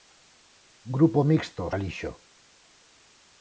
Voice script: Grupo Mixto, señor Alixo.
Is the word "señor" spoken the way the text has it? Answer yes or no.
no